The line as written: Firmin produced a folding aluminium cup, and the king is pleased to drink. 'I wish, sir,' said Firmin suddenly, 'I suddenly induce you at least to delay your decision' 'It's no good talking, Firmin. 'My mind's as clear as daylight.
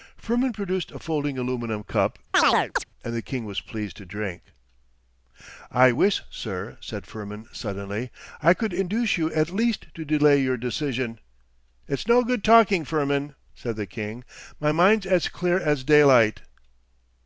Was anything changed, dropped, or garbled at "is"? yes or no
yes